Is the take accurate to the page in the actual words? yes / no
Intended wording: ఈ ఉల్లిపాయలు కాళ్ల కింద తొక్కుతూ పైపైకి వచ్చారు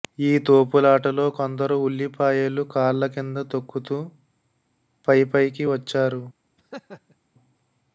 no